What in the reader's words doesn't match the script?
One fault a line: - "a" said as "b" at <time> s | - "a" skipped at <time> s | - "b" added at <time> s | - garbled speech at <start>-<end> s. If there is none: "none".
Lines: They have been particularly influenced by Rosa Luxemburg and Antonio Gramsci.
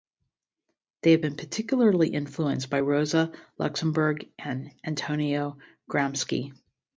none